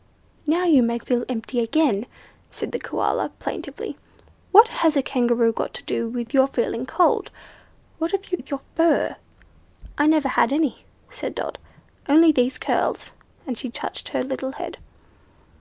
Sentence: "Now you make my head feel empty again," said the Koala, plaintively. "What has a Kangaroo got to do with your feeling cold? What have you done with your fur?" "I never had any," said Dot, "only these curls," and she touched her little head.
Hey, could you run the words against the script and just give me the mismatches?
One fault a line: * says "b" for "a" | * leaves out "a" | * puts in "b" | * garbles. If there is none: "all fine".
* leaves out "my head"
* leaves out "done"